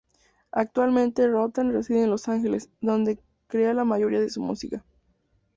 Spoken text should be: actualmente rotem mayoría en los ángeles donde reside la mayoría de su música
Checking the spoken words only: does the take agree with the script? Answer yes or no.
no